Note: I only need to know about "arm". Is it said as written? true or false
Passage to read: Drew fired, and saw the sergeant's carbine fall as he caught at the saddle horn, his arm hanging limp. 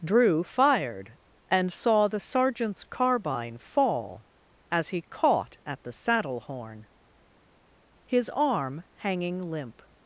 true